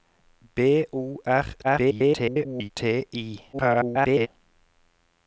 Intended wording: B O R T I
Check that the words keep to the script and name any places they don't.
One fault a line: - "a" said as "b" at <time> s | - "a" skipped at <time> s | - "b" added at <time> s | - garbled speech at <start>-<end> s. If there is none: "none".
- garbled speech at 1.6-2.7 s
- garbled speech at 3.5-4.3 s